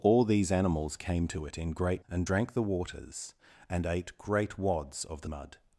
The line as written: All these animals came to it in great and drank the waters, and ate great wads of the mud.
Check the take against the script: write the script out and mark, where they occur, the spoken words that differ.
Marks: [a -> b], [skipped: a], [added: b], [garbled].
All these animals came to it in great and drank the waters, and ate great wads of the mud.